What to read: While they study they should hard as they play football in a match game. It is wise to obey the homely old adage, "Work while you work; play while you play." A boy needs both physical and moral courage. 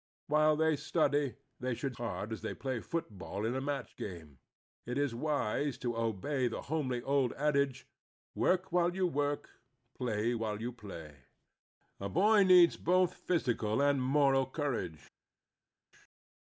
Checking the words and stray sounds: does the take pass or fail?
pass